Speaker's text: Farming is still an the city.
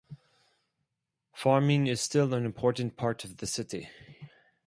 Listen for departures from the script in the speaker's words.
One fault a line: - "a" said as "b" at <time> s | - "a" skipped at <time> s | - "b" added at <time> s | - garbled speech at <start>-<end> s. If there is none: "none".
- "important part of" added at 2.4 s